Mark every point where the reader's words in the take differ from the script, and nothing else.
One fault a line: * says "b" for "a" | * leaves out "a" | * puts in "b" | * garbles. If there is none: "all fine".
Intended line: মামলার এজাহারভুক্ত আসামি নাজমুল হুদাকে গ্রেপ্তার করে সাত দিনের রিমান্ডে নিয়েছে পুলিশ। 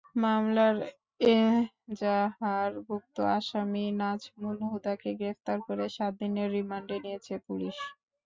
all fine